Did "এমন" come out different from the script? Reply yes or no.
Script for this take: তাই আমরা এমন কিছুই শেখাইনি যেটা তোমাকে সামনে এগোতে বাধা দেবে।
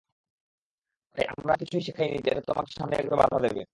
yes